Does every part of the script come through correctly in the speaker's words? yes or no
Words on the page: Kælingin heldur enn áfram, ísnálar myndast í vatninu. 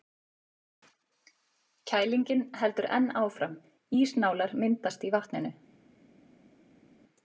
yes